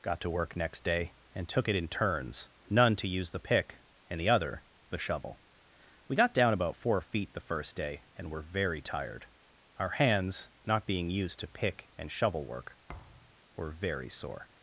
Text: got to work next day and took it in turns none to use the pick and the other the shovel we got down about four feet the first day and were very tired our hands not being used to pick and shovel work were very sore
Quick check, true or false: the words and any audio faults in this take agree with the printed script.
false